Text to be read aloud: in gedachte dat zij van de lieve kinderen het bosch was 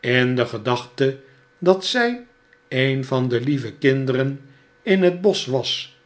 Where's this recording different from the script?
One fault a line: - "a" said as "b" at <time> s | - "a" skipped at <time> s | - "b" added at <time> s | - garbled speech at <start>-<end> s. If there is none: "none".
- "de" added at 0.3 s
- "een" added at 2.7 s
- "in" added at 4.8 s